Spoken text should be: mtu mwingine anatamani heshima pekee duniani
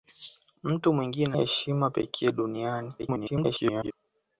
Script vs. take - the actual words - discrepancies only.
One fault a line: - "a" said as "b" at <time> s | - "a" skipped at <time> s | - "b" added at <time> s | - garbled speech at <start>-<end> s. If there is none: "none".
- "anatamani" skipped at 1.4 s
- garbled speech at 3.0-3.9 s